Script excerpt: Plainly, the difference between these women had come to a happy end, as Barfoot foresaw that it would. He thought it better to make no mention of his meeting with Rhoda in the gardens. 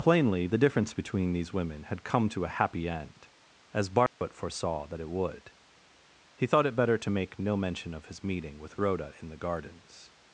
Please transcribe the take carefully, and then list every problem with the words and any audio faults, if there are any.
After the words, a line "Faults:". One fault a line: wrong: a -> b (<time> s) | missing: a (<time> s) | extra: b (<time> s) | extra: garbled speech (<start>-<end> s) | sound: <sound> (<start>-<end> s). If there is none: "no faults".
Plainly, the difference between these women had come to a happy end, as Barfoot foresaw that it would. He thought it better to make no mention of his meeting with Rhoda in the gardens.
Faults:
sound: dropout (4.1-4.2 s)